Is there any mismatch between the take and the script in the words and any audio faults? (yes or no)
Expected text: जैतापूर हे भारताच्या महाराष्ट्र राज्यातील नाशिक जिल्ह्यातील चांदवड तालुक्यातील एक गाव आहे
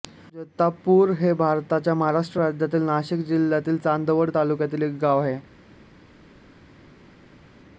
no